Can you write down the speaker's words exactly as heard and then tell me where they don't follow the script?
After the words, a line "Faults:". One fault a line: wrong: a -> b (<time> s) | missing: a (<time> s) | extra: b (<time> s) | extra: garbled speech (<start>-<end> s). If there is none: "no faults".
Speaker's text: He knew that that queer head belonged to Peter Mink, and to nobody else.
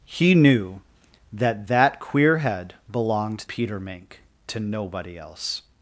He knew that that queer head belonged Peter Mink, to nobody else.
Faults:
missing: to (3.4 s)
missing: and (4.2 s)